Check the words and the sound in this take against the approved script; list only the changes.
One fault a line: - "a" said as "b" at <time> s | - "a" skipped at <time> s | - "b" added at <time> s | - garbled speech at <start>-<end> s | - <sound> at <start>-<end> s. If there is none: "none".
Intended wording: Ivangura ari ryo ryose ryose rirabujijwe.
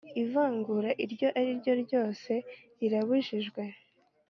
- "iryo" added at 1.1 s
- "ryose" skipped at 2.3 s